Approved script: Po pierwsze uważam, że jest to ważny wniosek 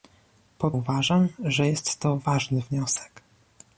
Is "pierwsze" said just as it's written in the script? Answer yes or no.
no